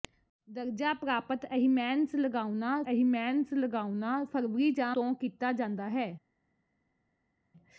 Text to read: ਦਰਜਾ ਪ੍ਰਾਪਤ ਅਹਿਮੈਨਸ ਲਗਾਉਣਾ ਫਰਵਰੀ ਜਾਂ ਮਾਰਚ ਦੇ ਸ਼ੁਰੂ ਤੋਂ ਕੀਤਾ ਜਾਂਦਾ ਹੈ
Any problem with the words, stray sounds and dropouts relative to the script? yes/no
yes